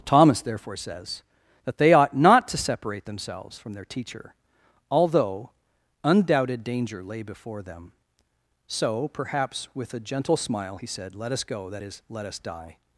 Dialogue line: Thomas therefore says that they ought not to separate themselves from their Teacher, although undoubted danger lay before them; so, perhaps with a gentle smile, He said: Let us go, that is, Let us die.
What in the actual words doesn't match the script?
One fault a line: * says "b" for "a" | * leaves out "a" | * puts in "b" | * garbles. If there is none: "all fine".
all fine